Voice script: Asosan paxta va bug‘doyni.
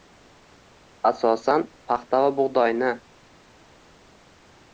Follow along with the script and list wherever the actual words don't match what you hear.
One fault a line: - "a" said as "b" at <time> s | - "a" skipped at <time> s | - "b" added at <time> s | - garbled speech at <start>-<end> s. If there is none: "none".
none